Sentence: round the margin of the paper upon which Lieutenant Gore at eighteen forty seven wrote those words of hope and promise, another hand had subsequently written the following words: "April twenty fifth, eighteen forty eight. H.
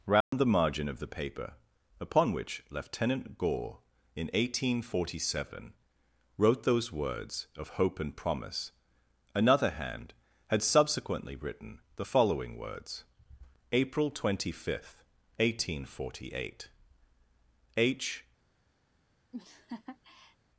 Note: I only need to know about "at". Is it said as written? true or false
false